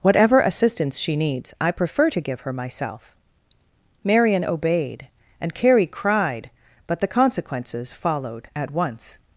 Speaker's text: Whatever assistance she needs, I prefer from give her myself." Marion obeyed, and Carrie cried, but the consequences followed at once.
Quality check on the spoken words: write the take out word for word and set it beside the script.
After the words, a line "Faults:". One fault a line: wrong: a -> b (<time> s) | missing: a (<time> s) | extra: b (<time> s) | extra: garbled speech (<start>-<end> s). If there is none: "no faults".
Whatever assistance she needs, I prefer to give her myself." Marion obeyed, and Carrie cried, but the consequences followed at once.
Faults:
wrong: from -> to (2.1 s)